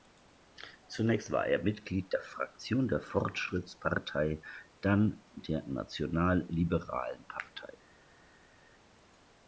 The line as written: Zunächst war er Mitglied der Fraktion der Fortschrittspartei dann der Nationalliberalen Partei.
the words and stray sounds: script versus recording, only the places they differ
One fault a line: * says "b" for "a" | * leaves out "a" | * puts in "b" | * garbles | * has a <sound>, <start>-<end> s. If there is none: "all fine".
all fine